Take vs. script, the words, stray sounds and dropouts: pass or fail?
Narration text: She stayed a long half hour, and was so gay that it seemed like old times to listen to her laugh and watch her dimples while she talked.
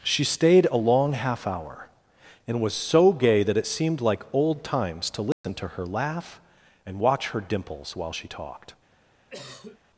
fail